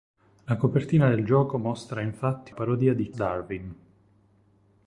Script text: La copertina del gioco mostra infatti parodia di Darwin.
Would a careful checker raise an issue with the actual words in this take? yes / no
no